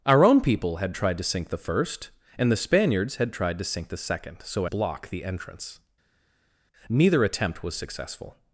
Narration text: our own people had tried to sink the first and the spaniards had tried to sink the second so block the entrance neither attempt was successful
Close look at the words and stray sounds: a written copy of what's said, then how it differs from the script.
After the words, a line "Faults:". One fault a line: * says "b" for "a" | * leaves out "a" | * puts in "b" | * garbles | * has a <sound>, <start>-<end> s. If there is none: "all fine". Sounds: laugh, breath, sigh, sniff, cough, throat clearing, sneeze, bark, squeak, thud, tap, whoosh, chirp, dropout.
our own people had tried to sink the first and the spaniards had tried to sink the second so block the entrance neither attempt was successful
Faults:
all fine